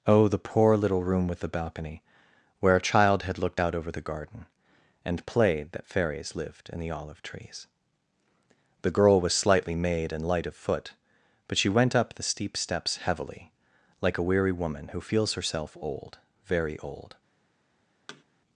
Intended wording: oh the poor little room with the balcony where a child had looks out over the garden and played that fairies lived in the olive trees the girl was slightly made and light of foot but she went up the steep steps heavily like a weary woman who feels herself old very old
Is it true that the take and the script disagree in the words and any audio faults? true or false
true